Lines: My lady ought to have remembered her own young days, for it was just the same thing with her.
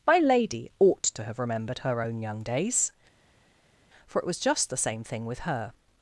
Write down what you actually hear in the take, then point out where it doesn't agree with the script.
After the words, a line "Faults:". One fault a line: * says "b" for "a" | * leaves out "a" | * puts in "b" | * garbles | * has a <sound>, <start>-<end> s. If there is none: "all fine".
My lady ought to have remembered her own young days, for it was just the same thing with her.
Faults:
all fine